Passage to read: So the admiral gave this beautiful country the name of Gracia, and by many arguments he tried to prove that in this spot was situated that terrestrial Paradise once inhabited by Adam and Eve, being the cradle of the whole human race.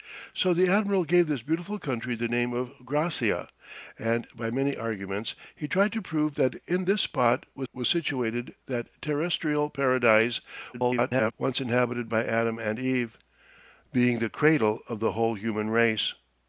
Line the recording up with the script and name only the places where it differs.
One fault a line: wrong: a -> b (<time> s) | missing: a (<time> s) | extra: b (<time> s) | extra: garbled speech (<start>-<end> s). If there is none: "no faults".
extra: was (7.7 s)
extra: garbled speech (10.7-11.3 s)